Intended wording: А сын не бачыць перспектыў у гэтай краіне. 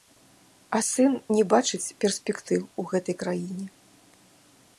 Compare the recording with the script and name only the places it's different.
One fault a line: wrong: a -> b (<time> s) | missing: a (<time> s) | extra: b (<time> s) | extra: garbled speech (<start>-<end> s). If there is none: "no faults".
no faults